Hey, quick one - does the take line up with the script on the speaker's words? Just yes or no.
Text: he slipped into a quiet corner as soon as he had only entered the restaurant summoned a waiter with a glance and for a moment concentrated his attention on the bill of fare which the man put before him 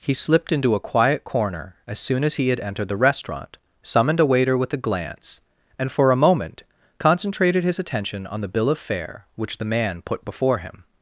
no